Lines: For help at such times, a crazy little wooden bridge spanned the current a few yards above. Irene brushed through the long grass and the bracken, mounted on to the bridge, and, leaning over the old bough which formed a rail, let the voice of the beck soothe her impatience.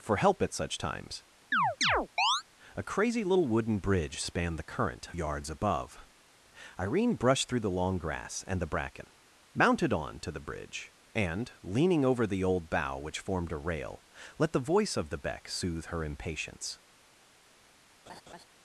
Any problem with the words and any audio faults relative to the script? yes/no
yes